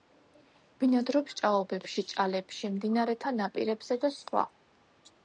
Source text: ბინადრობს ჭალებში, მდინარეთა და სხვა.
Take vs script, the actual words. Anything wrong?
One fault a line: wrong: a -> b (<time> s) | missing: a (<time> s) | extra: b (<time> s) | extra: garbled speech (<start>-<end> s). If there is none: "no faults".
extra: ჭაობებში (1.4 s)
extra: ნაპირებზე (3.4 s)